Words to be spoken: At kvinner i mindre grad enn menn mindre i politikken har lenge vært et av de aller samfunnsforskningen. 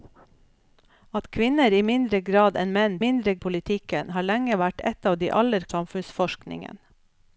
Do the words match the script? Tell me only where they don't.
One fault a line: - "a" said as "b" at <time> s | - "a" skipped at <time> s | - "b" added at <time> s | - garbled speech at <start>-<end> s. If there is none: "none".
none